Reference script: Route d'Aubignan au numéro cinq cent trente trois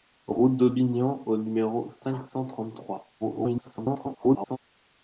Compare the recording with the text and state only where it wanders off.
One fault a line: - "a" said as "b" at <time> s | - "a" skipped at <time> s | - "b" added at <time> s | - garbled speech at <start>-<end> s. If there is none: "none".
- garbled speech at 3.2-4.6 s